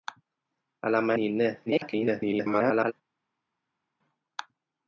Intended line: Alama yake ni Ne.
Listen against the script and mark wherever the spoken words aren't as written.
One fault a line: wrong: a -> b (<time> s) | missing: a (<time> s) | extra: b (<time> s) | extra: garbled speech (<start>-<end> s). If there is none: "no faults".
missing: yake (1.1 s)
extra: garbled speech (1.7-2.9 s)